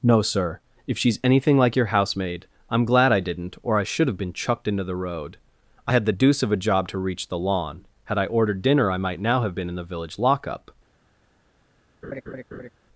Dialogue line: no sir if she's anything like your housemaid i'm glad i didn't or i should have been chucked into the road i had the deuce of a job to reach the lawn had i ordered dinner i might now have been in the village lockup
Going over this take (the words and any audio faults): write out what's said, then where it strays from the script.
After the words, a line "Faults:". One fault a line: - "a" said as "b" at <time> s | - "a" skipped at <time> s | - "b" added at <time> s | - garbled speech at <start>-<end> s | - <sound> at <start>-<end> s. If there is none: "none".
no sir if she's anything like your housemaid i'm glad i didn't or i should have been chucked into the road i had the deuce of a job to reach the lawn had i ordered dinner i might now have been in the village lockup
Faults:
- laugh at 12.0-12.7 s